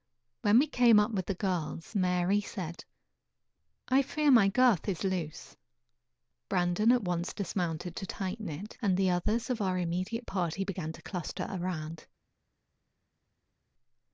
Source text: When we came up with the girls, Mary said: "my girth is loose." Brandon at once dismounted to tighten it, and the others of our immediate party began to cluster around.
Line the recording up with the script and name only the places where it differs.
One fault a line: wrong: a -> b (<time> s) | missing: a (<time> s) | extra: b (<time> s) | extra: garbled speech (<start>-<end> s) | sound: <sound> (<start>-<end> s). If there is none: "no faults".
extra: I fear (3.9 s)